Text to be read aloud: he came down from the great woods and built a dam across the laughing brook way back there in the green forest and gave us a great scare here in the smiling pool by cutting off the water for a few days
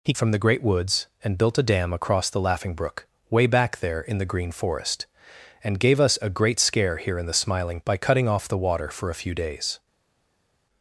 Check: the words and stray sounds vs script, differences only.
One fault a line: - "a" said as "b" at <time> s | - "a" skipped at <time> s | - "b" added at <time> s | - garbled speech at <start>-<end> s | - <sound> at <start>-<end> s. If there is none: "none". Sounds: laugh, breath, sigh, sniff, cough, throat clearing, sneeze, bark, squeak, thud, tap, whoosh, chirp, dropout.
- "came down" skipped at 0.1 s
- "pool" skipped at 7.8 s